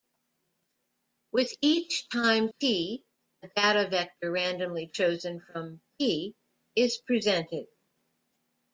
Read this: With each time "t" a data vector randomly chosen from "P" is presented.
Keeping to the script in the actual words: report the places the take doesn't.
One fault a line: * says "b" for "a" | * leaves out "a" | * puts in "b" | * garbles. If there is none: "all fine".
all fine